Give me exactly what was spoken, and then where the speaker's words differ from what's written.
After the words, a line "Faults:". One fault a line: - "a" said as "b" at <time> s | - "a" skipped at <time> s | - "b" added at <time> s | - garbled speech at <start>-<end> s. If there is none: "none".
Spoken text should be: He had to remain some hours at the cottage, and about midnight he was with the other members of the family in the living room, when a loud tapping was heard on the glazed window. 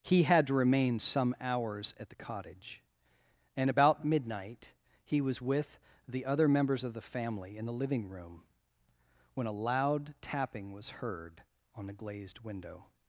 He had to remain some hours at the cottage, and about midnight he was with the other members of the family in the living room, when a loud tapping was heard on the glazed window.
Faults:
none